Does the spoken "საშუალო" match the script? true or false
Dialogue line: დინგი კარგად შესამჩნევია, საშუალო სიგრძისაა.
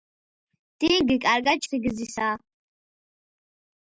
false